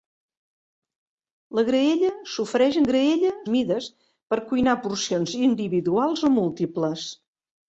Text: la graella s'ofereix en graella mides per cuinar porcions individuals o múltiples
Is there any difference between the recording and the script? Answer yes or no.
no